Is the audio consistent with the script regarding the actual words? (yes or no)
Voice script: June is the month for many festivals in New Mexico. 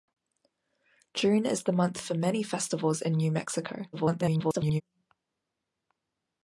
no